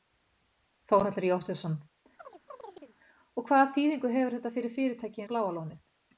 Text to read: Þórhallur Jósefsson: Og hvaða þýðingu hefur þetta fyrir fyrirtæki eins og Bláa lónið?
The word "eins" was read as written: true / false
false